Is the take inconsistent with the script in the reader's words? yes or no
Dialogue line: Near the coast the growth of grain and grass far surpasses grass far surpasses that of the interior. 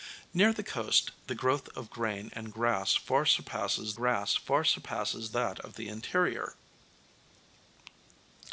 no